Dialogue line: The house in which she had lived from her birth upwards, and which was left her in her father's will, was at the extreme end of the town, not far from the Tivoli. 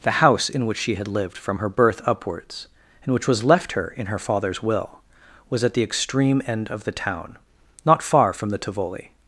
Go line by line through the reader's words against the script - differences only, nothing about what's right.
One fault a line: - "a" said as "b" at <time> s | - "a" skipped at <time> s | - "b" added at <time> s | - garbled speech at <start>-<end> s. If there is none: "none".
none